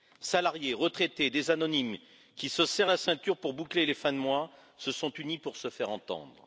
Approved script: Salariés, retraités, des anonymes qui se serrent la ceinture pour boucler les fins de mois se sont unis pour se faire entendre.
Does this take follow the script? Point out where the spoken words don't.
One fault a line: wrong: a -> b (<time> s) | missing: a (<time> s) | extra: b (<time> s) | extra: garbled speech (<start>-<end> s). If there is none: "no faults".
no faults